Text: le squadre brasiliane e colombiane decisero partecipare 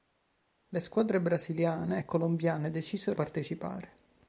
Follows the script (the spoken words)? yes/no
yes